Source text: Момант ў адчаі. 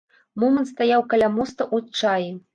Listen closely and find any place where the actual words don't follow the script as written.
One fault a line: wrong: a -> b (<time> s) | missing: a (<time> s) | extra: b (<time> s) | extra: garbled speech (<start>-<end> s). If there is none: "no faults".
extra: стаяў каля моста (0.7 s)